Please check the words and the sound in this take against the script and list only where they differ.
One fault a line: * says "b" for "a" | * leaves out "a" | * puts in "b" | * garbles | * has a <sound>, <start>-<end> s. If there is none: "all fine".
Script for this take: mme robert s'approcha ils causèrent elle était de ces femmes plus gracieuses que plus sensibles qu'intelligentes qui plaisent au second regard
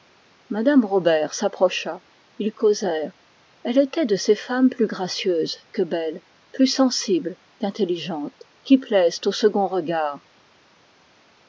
* puts in "belles"